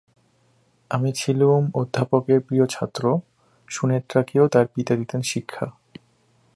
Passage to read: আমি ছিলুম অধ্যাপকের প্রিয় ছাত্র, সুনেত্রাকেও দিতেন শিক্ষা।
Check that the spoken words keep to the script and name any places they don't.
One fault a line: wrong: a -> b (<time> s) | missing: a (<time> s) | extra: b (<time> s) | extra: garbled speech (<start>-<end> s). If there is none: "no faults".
extra: তার পিতা (4.5 s)